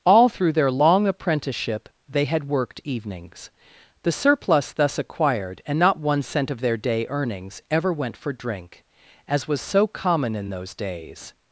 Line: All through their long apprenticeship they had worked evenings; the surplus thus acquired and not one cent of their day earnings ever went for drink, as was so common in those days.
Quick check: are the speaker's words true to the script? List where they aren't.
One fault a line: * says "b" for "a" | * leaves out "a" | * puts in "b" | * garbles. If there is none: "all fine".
all fine